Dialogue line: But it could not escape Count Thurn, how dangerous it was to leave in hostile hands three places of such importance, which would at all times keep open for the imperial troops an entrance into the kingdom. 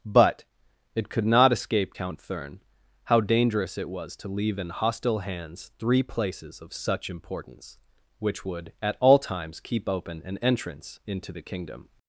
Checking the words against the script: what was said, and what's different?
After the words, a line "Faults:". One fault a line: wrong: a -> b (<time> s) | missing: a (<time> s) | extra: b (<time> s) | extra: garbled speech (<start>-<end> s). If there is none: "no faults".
But it could not escape Count Thurn, how dangerous it was to leave in hostile hands three places of such importance, which would at all times keep open an entrance into the kingdom.
Faults:
missing: for the imperial troops (10.2 s)